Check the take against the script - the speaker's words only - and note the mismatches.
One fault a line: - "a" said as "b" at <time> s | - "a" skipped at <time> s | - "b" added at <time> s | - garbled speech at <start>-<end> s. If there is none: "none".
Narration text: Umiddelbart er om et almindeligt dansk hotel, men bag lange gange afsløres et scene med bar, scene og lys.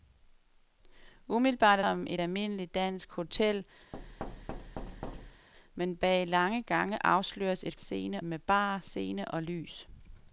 none